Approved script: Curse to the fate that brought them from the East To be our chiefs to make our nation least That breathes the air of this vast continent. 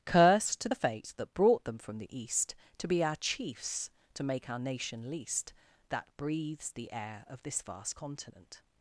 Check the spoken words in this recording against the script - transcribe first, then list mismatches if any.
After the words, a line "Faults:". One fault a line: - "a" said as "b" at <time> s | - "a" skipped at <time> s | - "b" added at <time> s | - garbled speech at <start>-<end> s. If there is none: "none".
Curse to the fate that brought them from the East To be our chiefs to make our nation least That breathes the air of this vast continent.
Faults:
none